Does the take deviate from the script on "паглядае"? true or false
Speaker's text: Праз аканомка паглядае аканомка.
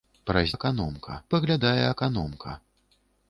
false